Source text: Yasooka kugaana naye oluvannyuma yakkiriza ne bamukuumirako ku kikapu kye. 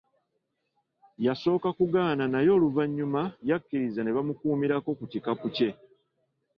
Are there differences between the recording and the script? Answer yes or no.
no